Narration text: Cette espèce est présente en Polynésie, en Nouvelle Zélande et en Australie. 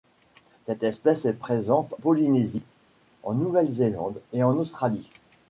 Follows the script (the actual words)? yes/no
no